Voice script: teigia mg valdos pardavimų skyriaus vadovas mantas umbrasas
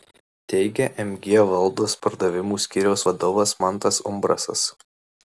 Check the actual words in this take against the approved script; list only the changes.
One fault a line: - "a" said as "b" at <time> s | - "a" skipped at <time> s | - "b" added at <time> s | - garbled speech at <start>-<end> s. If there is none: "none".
none